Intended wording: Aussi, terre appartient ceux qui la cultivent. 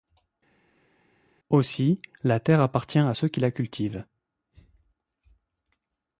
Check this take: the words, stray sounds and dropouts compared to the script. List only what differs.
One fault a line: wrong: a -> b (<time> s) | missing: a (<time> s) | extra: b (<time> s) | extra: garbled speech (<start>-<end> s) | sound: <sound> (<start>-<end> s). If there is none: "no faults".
extra: la (2.2 s)
extra: à (3.0 s)